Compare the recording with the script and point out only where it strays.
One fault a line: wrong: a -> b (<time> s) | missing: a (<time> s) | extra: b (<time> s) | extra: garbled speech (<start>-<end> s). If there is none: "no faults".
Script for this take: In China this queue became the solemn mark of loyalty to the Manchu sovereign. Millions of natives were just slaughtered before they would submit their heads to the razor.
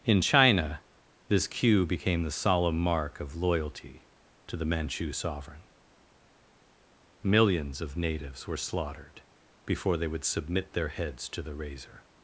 missing: just (8.6 s)